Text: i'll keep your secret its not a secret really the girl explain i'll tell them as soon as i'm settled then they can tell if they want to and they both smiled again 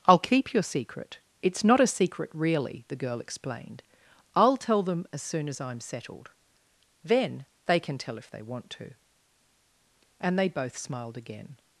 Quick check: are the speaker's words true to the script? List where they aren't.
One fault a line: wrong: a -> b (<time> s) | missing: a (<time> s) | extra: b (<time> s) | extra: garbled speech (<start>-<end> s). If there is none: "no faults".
wrong: explain -> explained (3.2 s)